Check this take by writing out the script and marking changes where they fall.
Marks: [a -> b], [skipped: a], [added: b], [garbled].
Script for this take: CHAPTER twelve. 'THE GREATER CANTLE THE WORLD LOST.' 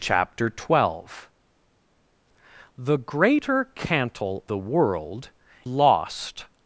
CHAPTER twelve. 'THE GREATER CANTLE THE WORLD LOST.'